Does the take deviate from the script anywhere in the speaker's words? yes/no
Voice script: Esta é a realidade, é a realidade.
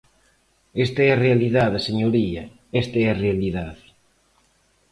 yes